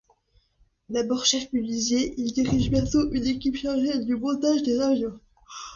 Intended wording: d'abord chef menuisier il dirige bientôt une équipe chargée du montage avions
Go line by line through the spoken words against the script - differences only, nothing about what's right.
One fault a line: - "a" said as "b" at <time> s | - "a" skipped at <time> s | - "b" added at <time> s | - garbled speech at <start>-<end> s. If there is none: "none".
- "des" added at 4.6 s